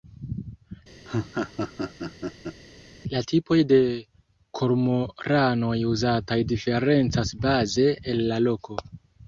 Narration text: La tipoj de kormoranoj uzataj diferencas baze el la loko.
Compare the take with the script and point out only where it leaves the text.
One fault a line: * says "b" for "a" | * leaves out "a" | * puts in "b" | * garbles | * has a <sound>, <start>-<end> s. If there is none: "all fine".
* has a laugh, 1.0-2.6 s